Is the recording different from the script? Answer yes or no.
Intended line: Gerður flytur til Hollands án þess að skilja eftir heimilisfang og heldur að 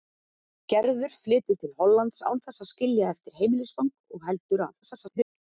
yes